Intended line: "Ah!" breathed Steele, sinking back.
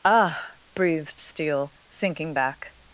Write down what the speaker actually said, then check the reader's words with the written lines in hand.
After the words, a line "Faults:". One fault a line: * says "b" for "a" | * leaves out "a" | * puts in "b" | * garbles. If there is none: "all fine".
"Ah!" breathed Steele, sinking back.
Faults:
all fine